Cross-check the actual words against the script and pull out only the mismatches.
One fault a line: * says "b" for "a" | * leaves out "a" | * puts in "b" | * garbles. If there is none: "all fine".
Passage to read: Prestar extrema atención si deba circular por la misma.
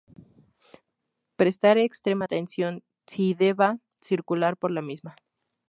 all fine